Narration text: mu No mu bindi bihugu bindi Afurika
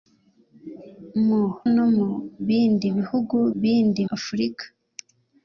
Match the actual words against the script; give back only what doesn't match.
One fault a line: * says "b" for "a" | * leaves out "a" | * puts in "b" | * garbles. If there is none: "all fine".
all fine